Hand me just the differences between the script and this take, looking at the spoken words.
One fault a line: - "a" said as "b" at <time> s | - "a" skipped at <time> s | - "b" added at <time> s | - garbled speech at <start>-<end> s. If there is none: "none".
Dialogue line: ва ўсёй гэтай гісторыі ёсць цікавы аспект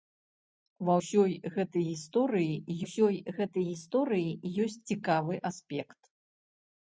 - "ўсёй гэтай гісторыі" added at 2.8 s